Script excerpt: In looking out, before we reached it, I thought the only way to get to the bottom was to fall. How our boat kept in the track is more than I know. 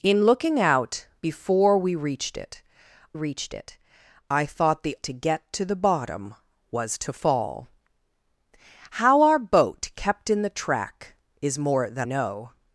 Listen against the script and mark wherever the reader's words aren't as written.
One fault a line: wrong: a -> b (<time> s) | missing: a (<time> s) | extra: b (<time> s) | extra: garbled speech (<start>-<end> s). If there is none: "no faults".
extra: reached it (3.1 s)
missing: only way (5.0 s)
missing: I (12.1 s)